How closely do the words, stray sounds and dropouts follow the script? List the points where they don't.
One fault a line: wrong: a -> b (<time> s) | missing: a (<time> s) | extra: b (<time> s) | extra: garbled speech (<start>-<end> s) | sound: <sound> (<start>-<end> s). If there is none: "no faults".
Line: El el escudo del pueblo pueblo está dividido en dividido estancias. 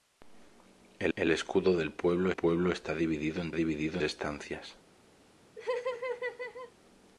sound: laugh (5.6-6.7 s)